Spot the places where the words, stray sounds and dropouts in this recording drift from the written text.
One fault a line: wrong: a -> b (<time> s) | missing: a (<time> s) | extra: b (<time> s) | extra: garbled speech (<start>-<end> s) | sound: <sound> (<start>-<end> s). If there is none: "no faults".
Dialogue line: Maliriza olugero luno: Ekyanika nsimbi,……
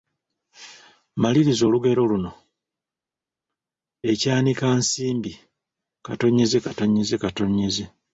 no faults